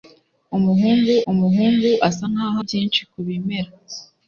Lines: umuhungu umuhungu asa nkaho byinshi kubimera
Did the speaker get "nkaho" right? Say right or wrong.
right